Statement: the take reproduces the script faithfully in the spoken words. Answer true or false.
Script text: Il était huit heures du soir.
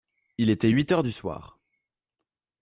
true